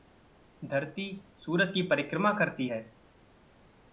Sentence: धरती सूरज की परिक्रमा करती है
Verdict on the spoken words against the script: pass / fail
pass